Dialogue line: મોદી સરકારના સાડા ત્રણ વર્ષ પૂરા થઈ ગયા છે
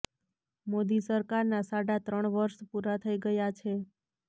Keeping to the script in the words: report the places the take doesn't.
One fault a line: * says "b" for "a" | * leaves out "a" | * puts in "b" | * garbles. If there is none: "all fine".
all fine